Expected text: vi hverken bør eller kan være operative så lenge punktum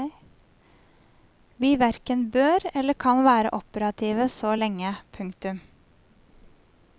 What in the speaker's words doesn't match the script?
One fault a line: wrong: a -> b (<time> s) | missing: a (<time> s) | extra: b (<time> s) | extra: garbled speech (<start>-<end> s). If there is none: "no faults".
no faults